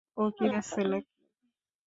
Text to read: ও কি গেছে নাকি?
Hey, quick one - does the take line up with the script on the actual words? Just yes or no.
yes